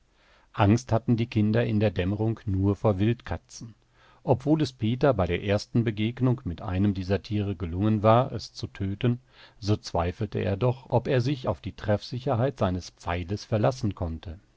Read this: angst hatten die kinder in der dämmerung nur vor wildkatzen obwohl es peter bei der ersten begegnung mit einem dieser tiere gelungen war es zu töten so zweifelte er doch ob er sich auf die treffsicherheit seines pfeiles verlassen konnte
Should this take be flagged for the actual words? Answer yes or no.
no